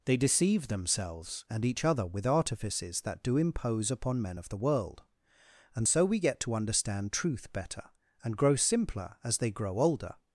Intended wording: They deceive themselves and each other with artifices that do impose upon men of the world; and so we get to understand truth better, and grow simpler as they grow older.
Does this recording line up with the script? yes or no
yes